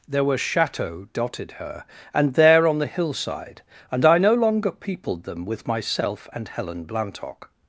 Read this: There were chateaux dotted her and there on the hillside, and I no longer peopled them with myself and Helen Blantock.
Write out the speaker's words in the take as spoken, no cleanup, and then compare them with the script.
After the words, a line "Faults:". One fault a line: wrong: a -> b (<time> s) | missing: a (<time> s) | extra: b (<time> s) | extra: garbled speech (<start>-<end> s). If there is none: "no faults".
There were chateaux dotted her and there on the hillside, and I no longer peopled them with myself and Helen Blantock.
Faults:
no faults